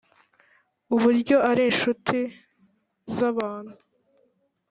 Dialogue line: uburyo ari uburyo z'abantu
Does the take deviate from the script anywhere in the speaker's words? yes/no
yes